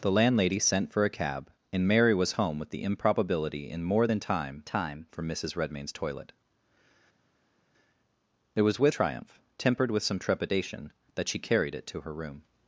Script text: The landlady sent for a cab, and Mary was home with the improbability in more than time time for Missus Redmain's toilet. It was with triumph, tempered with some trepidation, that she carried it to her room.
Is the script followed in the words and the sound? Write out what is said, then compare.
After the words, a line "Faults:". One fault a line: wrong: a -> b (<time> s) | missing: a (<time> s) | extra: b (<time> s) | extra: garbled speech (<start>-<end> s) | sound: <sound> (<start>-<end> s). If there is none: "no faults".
The landlady sent for a cab, and Mary was home with the improbability in more than time time for Missus Redmain's toilet. It was with triumph, tempered with some trepidation, that she carried it to her room.
Faults:
no faults